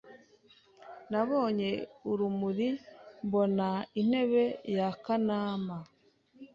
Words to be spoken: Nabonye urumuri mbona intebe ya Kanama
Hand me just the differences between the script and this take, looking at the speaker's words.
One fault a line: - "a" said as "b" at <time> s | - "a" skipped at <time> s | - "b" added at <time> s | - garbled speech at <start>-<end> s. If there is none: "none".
none